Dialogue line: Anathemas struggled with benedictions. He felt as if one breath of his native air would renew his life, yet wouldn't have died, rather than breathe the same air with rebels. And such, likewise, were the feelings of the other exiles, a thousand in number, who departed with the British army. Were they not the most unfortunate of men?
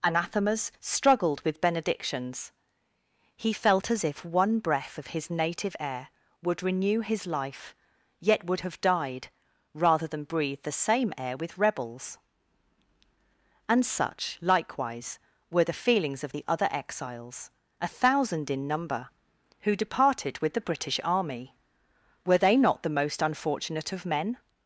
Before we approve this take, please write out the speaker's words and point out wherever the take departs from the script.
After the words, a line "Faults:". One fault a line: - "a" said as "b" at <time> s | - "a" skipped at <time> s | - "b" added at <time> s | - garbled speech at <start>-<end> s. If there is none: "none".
Anathemas struggled with benedictions. He felt as if one breath of his native air would renew his life, yet would have died, rather than breathe the same air with rebels. And such, likewise, were the feelings of the other exiles, a thousand in number, who departed with the British army. Were they not the most unfortunate of men?
Faults:
- "wouldn't" said as "would" at 8.4 s